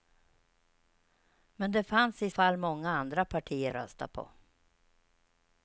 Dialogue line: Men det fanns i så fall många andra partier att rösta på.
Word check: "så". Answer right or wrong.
wrong